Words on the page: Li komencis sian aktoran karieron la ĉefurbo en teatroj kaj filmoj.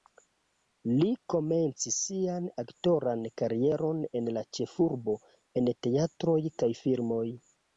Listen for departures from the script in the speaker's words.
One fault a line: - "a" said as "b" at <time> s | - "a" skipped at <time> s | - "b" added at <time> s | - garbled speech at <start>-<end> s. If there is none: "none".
- "en" added at 4.2 s